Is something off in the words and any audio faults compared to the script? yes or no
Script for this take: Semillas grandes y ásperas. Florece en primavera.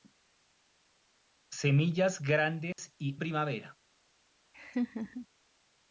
yes